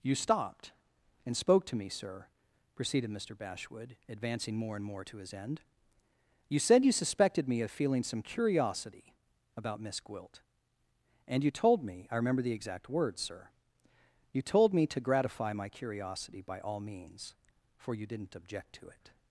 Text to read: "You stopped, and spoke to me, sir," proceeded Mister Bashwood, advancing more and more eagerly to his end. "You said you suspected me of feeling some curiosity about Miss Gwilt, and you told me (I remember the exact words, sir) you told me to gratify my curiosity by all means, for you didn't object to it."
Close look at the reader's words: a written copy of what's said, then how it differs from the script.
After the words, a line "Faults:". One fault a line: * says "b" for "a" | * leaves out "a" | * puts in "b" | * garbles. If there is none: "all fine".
"You stopped, and spoke to me, sir," proceeded Mister Bashwood, advancing more and more to his end. "You said you suspected me of feeling some curiosity about Miss Gwilt, and you told me (I remember the exact words, sir) you told me to gratify my curiosity by all means, for you didn't object to it."
Faults:
* leaves out "eagerly"